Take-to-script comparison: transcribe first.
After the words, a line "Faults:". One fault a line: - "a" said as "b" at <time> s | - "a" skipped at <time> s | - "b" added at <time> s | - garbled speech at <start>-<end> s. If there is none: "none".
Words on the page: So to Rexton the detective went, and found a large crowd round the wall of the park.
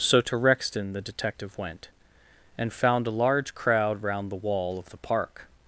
So to Rexton the detective went, and found a large crowd round the wall of the park.
Faults:
none